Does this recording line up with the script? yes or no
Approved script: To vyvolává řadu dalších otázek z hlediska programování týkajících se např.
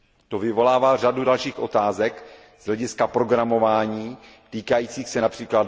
yes